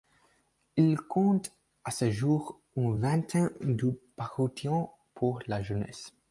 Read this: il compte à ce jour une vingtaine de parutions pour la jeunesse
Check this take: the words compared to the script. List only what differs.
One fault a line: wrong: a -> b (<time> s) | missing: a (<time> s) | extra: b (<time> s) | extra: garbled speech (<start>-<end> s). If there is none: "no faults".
no faults